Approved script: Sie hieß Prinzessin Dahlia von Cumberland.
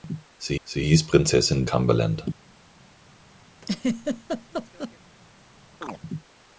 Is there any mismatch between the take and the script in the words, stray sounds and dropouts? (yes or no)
yes